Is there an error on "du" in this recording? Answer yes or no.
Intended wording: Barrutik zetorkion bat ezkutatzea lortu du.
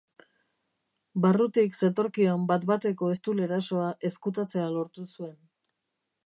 yes